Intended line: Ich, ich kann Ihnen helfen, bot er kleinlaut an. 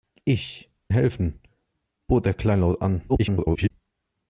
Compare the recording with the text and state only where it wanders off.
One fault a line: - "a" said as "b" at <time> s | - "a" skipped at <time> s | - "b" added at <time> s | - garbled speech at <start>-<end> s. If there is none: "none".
- "ich kann Ihnen" skipped at 0.7 s
- garbled speech at 3.1-3.7 s